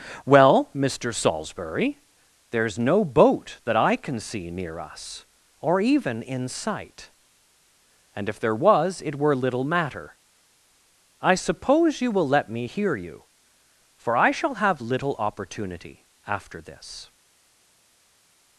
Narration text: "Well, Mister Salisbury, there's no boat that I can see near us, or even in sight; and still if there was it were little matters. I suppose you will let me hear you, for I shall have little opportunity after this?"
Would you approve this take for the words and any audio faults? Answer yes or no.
no